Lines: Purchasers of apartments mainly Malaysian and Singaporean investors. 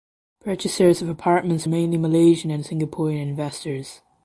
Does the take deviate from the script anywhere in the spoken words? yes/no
no